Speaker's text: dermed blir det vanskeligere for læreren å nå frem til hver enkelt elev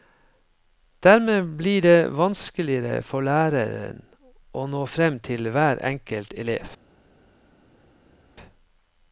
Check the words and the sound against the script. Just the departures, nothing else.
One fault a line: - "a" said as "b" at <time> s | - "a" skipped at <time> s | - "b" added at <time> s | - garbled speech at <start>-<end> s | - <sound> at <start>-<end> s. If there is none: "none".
none